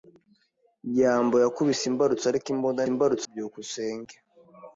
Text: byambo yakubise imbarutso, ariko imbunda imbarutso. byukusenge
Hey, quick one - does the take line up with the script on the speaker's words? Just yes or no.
yes